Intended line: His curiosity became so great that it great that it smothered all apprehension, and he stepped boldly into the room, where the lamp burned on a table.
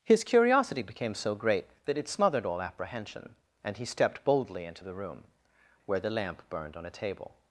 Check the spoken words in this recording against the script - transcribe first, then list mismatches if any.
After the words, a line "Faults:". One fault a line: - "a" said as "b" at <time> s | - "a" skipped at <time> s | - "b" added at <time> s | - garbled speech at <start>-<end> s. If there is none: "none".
His curiosity became so great that it smothered all apprehension, and he stepped boldly into the room, where the lamp burned on a table.
Faults:
- "great that it" skipped at 2.1 s